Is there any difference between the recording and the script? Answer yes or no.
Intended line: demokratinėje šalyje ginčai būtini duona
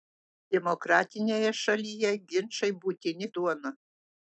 no